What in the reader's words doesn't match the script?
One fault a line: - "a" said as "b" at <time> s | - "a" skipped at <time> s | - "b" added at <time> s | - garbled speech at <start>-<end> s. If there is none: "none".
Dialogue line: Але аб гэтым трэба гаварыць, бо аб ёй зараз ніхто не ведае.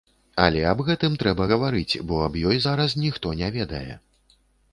none